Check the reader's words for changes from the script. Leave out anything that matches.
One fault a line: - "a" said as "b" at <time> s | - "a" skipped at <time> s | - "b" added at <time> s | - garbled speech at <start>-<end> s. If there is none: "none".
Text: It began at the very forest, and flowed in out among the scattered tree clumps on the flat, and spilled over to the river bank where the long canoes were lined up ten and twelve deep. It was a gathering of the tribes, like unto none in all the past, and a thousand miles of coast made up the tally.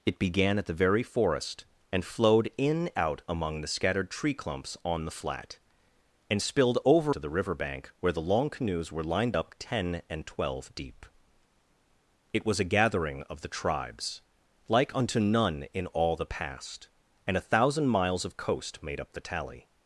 none